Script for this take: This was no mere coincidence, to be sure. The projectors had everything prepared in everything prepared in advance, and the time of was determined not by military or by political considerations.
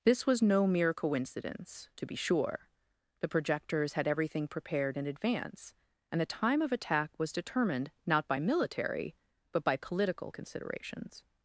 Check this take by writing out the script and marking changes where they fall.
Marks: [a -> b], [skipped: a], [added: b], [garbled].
This was no mere coincidence, to be sure. The projectors had everything prepared in [skipped: everything prepared in] advance, and the time of [added: attack] was determined not by military [or -> but] by political considerations.